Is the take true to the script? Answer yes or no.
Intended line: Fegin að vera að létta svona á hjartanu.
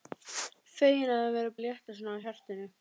yes